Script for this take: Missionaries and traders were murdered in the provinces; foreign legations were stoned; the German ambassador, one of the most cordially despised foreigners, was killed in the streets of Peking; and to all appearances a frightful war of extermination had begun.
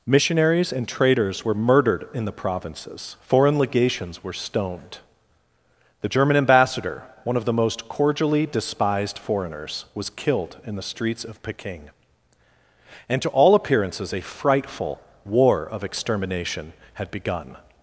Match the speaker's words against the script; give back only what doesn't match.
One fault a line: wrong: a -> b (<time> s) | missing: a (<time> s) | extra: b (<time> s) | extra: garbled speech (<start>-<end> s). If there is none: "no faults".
no faults